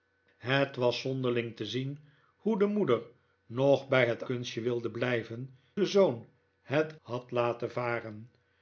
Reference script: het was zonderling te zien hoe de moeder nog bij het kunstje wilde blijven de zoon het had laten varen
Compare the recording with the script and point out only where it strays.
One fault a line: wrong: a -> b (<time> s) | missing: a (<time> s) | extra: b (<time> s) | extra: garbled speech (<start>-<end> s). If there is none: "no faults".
no faults